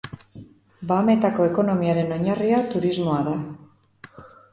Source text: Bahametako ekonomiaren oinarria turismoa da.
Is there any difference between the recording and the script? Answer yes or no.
no